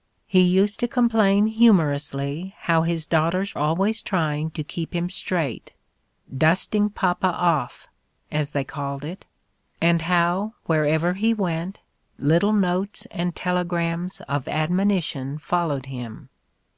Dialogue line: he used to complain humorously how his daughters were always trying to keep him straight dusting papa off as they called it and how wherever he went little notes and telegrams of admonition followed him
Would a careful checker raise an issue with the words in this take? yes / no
yes